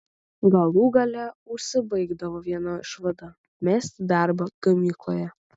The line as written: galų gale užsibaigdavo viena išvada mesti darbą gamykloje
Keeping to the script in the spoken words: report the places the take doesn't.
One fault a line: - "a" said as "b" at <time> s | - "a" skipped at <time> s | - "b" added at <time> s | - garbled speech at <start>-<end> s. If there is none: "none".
none